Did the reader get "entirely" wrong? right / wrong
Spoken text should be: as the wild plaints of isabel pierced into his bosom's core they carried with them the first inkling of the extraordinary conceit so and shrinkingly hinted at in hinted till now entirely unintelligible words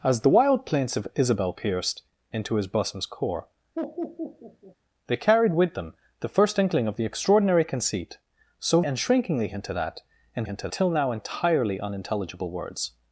right